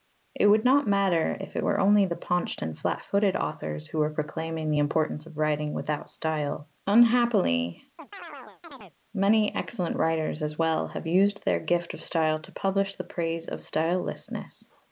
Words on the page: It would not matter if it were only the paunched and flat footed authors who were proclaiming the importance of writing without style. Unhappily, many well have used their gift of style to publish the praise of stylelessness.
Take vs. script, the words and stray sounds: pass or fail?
fail